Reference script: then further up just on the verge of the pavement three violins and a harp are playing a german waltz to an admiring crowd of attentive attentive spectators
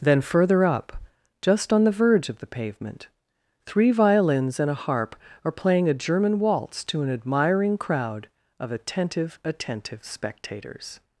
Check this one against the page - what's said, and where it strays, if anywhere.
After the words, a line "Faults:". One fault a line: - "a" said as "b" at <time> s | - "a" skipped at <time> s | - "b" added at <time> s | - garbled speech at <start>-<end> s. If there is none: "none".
then further up just on the verge of the pavement three violins and a harp are playing a german waltz to an admiring crowd of attentive attentive spectators
Faults:
none